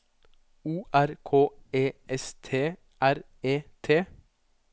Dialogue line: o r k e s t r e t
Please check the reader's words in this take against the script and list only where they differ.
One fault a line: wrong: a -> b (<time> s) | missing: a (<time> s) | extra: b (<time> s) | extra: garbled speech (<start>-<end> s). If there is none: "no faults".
no faults